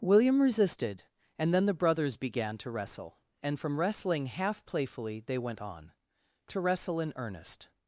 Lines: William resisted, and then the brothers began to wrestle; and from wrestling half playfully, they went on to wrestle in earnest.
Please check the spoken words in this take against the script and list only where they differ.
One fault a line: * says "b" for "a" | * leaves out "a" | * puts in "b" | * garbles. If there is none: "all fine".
all fine